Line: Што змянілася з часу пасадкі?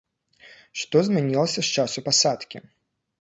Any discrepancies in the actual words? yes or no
no